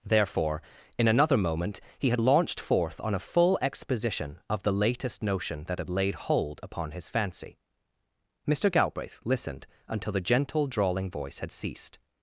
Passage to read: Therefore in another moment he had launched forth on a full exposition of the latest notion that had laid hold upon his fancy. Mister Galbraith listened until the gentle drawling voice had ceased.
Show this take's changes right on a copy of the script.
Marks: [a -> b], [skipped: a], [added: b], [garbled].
Therefore in another moment he had launched forth on a full exposition of the latest notion that had laid hold upon his fancy. Mister Galbraith listened until the gentle drawling voice had ceased.